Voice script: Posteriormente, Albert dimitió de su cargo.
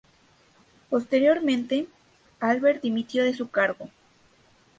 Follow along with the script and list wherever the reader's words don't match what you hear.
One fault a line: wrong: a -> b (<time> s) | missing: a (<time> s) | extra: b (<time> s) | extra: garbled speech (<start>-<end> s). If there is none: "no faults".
no faults